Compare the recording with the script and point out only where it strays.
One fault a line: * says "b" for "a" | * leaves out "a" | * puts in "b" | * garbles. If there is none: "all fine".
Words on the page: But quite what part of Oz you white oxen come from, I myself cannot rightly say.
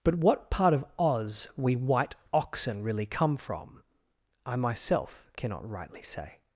* leaves out "quite"
* says "we" for "you"
* puts in "really"